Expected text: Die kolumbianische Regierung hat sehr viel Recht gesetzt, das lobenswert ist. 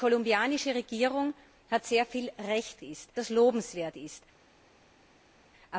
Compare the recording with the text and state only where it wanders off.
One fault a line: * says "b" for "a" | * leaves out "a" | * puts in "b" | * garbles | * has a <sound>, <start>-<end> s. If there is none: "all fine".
* says "ist" for "gesetzt"